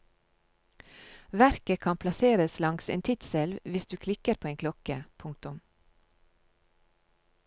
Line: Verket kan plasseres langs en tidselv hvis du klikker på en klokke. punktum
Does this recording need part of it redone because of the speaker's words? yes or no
no